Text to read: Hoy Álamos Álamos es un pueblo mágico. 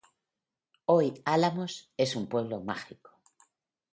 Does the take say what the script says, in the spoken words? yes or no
no